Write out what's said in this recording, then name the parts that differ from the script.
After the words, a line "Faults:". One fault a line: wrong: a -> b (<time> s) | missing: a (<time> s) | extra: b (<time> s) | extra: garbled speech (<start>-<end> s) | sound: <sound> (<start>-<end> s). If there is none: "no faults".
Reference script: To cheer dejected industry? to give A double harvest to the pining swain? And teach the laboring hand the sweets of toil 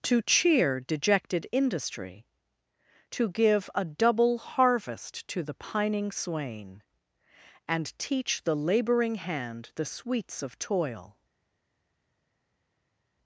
To cheer dejected industry? to give A double harvest to the pining swain? And teach the laboring hand the sweets of toil
Faults:
no faults